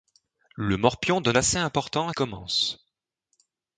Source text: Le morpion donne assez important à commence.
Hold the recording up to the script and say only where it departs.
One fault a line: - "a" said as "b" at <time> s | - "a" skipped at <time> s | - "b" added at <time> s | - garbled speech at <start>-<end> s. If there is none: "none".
none